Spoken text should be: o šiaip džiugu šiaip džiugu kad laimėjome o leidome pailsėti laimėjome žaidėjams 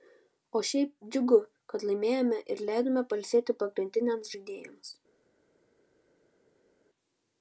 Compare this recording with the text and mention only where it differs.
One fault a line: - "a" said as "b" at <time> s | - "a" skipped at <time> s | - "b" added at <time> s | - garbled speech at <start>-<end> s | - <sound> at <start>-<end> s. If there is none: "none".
- "šiaip džiugu" skipped at 1.4 s
- "o" said as "ir" at 2.5 s
- "laimėjome" said as "pagrindiniams" at 3.6 s